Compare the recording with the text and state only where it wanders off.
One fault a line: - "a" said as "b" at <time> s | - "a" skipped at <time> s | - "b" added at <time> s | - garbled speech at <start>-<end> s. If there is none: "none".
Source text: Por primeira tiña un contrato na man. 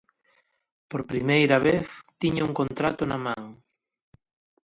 - "vez" added at 1.7 s